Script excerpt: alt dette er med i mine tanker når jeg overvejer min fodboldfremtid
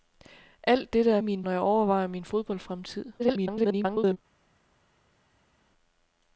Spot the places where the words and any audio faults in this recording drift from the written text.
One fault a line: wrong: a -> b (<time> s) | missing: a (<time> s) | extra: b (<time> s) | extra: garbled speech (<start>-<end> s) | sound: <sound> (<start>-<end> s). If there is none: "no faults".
missing: med (1.2 s)
missing: tanker (1.4 s)
extra: garbled speech (3.2-4.2 s)